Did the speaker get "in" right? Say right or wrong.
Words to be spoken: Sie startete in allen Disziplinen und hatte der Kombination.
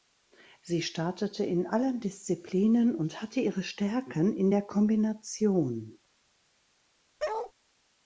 right